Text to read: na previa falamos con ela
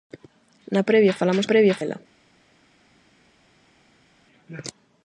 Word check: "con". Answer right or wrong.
wrong